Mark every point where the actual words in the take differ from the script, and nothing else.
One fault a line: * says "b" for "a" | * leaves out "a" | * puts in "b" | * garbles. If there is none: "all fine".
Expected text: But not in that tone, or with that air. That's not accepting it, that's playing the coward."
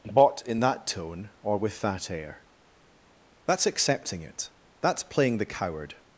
* leaves out "not"
* leaves out "not"